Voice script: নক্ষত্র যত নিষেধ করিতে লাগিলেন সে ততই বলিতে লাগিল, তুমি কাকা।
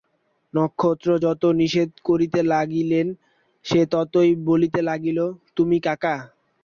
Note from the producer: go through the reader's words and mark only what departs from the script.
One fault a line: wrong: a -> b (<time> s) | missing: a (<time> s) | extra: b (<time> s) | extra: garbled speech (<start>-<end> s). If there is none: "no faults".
no faults